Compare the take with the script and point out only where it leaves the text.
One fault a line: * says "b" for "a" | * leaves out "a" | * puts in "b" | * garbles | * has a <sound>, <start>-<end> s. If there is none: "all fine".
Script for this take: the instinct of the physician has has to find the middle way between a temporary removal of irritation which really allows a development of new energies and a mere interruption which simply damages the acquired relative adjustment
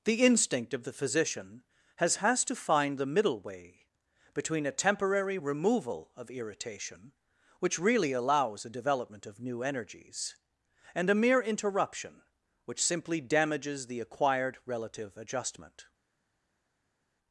all fine